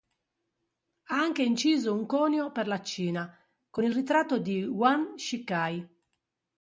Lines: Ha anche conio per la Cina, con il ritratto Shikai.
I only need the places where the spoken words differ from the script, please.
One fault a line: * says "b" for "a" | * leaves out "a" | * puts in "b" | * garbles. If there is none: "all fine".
* puts in "inciso un"
* puts in "di Yuan"